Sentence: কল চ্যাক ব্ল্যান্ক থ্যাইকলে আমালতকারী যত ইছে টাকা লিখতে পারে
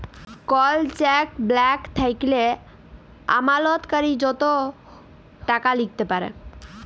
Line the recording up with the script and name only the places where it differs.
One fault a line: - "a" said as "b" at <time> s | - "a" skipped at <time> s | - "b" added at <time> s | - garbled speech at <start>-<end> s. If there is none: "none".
- "ইছে" skipped at 4.4 s